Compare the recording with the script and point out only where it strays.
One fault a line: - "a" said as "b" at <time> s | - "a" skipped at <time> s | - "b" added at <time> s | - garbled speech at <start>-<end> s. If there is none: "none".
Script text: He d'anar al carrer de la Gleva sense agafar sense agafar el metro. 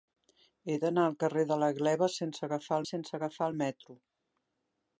none